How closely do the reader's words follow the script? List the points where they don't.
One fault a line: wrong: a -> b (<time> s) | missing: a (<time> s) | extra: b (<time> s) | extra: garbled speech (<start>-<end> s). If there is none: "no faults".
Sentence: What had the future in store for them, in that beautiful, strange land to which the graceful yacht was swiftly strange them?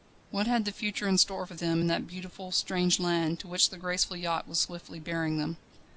wrong: strange -> bearing (5.0 s)